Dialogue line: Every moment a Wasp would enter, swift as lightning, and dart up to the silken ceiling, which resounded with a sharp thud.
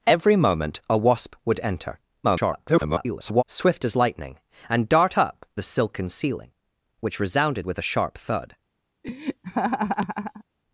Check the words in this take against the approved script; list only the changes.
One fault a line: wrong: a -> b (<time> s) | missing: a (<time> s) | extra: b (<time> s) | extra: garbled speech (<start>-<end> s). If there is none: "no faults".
extra: garbled speech (2.2-3.4 s)
missing: to (5.4 s)